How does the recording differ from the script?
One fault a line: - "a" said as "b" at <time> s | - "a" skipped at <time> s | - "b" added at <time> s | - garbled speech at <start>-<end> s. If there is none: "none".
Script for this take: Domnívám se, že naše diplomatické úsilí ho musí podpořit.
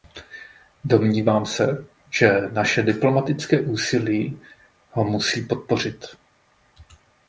none